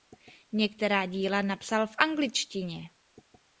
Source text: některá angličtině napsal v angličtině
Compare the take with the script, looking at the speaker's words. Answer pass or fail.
fail